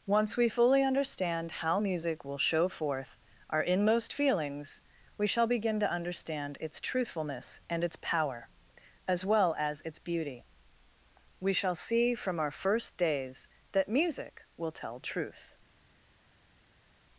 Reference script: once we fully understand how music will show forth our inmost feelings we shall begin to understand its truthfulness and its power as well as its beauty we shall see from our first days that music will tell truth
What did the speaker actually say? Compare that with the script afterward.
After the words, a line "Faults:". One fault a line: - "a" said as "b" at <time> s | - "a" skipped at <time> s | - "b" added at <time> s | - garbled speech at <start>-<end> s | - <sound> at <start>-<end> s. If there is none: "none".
once we fully understand how music will show forth our inmost feelings we shall begin to understand its truthfulness and its power as well as its beauty we shall see from our first days that music will tell truth
Faults:
none